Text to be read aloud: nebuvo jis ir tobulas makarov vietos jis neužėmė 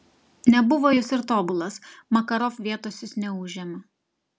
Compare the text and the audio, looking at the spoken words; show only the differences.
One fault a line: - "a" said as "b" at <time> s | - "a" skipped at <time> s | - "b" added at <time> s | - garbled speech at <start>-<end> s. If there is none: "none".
none